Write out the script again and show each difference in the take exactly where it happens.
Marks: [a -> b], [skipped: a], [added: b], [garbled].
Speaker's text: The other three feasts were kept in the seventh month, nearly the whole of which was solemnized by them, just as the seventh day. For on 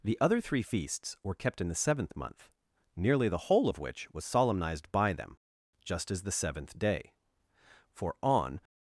The other three feasts were kept in the seventh month, nearly the whole of which was solemnized by them, just as the seventh day. For on